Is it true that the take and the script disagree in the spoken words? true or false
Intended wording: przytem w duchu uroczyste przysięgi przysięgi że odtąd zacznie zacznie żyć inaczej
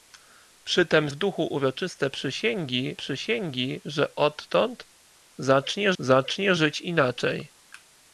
false